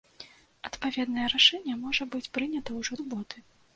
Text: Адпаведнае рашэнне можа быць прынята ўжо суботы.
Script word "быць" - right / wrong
right